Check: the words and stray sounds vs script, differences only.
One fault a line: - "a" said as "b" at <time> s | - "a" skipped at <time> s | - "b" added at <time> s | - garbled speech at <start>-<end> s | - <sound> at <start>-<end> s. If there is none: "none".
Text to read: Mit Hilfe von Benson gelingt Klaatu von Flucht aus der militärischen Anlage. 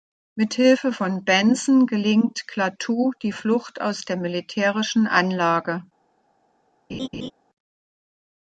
- "von" said as "die" at 3.2 s
- laugh at 6.9-7.3 s